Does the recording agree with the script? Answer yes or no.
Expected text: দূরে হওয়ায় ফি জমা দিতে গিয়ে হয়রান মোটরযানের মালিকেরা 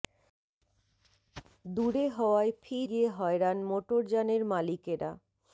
no